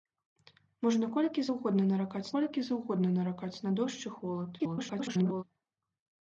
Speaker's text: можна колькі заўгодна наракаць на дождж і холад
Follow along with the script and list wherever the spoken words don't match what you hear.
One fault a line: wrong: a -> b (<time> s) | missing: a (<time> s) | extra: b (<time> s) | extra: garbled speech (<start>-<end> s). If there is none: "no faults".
extra: колькі заўгодна наракаць (2.4 s)
extra: garbled speech (4.6-5.4 s)